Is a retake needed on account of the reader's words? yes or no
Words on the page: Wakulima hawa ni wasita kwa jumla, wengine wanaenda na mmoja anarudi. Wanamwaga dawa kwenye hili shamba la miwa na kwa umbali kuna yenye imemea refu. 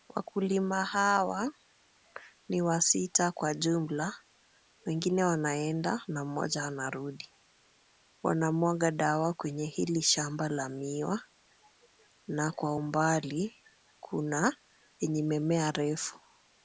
no